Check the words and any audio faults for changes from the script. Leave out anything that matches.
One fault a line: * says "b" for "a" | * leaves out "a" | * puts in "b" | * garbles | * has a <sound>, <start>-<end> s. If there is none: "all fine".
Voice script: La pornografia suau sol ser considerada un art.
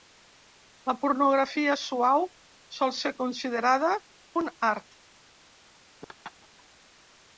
* has a laugh, 6.0-6.6 s